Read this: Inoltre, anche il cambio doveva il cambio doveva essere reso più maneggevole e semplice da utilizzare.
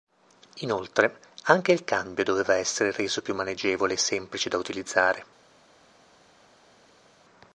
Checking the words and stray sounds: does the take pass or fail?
fail